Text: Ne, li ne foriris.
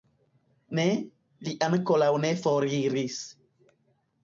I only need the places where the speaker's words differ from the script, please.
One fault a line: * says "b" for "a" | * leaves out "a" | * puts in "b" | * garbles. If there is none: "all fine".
* puts in "ankoraŭ"